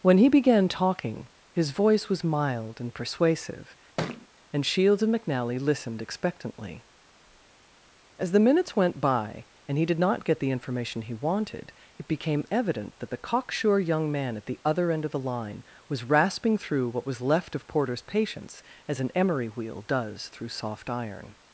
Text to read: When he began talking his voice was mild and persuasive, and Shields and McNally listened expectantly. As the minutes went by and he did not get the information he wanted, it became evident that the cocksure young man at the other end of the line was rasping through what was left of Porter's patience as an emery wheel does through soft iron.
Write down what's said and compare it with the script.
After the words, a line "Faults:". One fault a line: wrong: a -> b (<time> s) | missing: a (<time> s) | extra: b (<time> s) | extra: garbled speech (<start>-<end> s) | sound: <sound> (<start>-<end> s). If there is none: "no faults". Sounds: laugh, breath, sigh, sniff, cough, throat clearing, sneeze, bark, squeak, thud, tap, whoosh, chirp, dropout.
When he began talking his voice was mild and persuasive, and Shields and McNally listened expectantly. As the minutes went by and he did not get the information he wanted, it became evident that the cocksure young man at the other end of the line was rasping through what was left of Porter's patience as an emery wheel does through soft iron.
Faults:
sound: thud (4.0-4.3 s)